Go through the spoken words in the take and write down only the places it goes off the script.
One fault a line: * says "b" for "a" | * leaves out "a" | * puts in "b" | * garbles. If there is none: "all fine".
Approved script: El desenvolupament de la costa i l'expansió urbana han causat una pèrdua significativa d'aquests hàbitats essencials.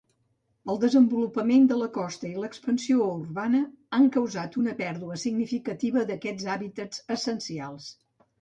all fine